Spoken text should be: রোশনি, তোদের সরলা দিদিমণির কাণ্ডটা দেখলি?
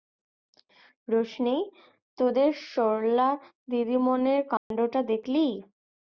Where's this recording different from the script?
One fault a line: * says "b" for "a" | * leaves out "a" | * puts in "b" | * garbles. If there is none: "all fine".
all fine